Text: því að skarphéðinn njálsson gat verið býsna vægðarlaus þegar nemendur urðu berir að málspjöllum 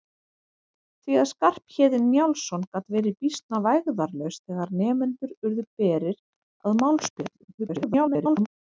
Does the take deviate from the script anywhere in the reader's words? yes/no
yes